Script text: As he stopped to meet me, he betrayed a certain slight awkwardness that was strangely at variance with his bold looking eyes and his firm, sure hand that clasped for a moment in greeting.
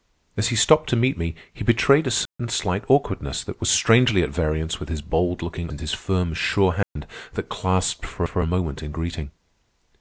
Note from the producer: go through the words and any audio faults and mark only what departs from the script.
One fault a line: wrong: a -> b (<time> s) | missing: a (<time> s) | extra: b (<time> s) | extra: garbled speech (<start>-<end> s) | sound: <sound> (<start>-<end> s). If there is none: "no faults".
sound: dropout (2.3-2.4 s)
missing: eyes (5.7 s)
sound: dropout (6.8-7.0 s)
extra: for (8.2 s)